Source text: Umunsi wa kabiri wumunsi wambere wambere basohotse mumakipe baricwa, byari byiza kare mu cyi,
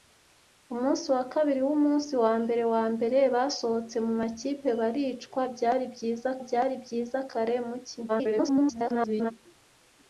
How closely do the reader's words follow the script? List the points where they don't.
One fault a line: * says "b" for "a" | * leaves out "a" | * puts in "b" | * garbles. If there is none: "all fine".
* puts in "byari byiza"
* garbles